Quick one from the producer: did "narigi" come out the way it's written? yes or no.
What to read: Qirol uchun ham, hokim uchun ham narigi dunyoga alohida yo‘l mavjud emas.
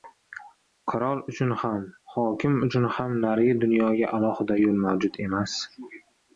yes